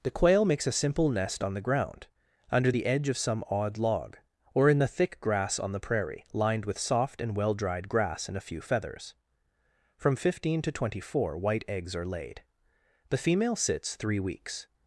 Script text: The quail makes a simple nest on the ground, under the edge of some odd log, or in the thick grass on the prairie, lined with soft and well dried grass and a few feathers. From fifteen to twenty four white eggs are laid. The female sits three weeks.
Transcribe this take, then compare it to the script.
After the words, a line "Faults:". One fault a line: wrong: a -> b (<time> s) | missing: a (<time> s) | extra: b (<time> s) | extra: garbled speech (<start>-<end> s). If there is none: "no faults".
The quail makes a simple nest on the ground, under the edge of some odd log, or in the thick grass on the prairie, lined with soft and well dried grass and a few feathers. From fifteen to twenty four white eggs are laid. The female sits three weeks.
Faults:
no faults